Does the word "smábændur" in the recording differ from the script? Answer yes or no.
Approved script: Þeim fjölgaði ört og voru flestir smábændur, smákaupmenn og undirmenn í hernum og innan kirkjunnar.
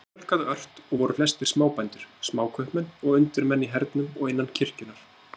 no